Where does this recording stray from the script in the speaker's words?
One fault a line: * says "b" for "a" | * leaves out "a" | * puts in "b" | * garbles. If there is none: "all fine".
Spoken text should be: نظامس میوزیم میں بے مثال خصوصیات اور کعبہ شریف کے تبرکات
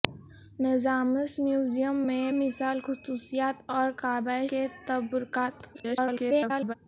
* leaves out "بے"
* leaves out "شریف"
* garbles